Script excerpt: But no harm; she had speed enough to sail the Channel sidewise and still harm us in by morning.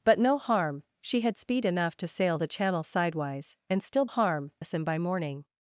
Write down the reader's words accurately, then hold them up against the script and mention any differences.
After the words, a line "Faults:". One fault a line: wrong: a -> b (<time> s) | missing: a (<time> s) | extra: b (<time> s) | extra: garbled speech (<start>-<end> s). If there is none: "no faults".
But no harm; she had speed enough to sail the Channel sidewise and still harm us in by morning.
Faults:
no faults